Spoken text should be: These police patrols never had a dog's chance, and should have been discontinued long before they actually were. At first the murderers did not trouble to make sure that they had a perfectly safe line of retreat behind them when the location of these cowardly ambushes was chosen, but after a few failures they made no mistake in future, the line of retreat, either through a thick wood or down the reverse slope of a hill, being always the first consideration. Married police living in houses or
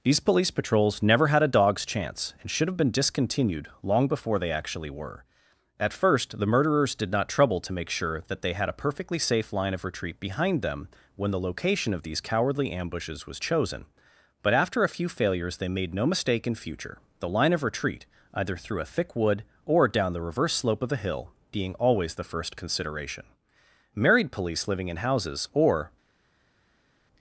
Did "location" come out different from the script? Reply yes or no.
no